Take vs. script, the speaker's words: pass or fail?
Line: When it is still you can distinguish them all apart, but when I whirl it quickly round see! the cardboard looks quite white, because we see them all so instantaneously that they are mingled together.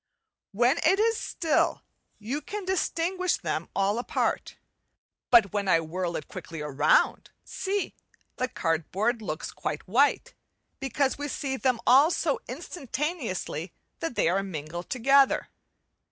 pass